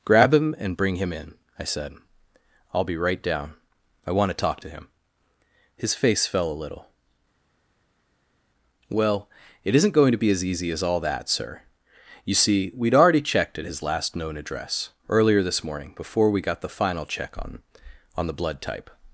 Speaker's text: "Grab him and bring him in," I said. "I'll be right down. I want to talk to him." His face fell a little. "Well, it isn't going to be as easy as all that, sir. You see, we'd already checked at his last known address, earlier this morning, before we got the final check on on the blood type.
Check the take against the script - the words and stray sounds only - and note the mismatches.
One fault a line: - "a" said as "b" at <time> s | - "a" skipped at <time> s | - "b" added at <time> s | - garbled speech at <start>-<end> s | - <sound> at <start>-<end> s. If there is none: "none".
none